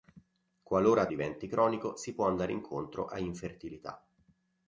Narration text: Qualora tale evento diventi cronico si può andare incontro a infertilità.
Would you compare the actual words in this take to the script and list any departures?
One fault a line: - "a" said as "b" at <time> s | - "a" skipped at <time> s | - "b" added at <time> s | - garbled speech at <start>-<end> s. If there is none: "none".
- "tale evento" skipped at 1.1 s